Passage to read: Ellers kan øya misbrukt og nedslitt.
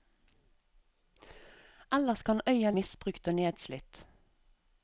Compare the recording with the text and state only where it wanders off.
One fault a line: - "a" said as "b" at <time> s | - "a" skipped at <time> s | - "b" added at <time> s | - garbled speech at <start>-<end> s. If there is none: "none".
none